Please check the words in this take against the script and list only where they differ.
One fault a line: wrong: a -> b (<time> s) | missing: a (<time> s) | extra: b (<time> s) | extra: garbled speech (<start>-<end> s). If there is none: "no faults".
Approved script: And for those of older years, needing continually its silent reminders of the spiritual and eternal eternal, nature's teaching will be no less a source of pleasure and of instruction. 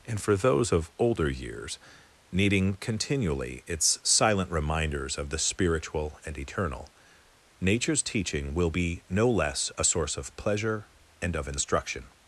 missing: eternal (6.9 s)